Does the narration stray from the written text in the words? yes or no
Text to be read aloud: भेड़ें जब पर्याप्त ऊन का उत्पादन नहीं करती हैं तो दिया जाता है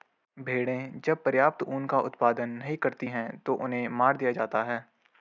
yes